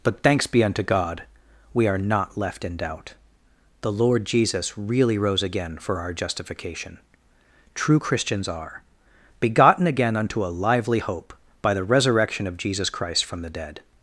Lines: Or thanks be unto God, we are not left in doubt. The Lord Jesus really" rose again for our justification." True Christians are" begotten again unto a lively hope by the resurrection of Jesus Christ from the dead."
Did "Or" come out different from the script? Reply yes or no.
yes